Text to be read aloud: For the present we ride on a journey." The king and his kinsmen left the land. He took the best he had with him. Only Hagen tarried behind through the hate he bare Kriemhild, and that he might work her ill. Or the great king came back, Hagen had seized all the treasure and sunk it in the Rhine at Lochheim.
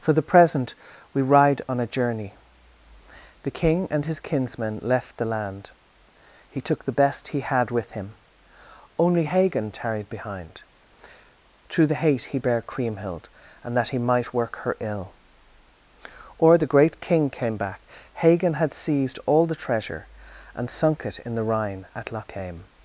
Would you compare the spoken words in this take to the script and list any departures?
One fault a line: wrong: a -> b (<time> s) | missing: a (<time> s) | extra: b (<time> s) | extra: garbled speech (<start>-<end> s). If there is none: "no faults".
no faults